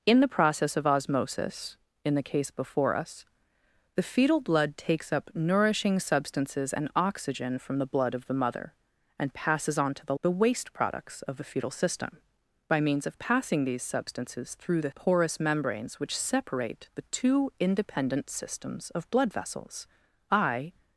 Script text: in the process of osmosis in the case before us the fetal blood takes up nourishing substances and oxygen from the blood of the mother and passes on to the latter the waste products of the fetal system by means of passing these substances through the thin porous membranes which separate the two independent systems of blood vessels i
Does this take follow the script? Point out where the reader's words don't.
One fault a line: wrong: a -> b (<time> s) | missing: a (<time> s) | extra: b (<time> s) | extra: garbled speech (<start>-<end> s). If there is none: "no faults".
missing: latter (10.2 s)
missing: thin (14.9 s)